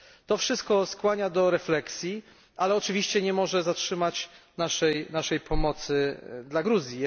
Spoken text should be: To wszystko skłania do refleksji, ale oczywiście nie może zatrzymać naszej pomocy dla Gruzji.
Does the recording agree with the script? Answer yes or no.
yes